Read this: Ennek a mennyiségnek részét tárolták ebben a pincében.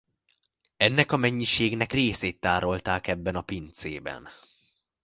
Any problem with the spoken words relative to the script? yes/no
no